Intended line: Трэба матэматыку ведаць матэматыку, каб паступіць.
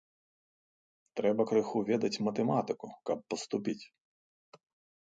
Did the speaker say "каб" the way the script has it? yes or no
yes